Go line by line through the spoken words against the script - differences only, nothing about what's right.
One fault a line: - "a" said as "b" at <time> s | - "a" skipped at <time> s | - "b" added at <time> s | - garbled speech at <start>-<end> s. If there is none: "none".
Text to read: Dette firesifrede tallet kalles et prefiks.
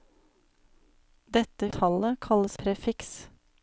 - "firesifrede" skipped at 1.7 s
- "et" skipped at 2.6 s